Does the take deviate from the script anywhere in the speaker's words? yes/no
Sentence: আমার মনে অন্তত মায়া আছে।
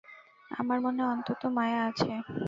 no